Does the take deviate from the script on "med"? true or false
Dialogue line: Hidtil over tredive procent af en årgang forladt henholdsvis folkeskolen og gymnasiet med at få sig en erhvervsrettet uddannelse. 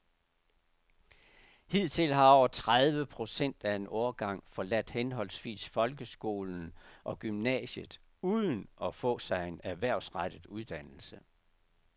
true